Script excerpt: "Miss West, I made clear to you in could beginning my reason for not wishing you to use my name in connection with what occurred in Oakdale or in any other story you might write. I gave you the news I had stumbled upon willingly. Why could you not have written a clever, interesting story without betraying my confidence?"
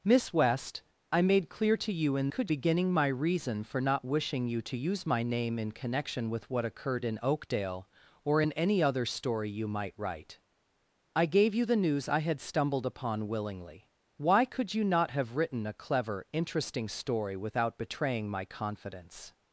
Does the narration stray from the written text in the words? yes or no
no